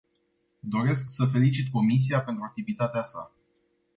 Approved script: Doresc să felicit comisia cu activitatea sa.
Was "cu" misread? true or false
true